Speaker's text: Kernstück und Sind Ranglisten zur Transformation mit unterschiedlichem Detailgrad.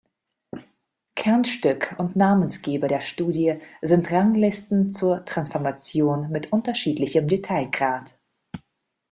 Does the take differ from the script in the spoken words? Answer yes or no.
yes